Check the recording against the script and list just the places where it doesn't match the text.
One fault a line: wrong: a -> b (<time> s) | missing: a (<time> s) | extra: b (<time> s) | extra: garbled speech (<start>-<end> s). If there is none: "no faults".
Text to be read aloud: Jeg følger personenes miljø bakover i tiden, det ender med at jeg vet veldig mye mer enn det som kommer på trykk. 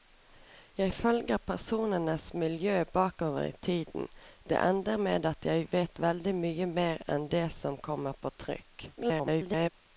extra: garbled speech (9.0-9.7 s)